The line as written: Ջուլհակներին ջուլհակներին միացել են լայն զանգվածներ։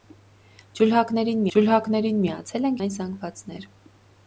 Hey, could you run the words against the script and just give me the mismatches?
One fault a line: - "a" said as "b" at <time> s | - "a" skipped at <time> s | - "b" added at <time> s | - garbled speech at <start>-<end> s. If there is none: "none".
none